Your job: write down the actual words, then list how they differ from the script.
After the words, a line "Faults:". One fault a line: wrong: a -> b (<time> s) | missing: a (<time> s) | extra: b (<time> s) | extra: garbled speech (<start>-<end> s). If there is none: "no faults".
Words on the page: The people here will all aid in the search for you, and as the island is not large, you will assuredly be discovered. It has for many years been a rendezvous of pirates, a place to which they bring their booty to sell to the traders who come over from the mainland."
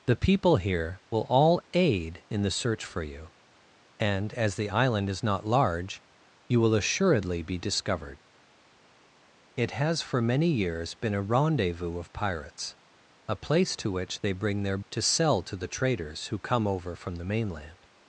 The people here will all aid in the search for you, and as the island is not large, you will assuredly be discovered. It has for many years been a rendezvous of pirates, a place to which they bring their to sell to the traders who come over from the mainland."
Faults:
missing: booty (14.8 s)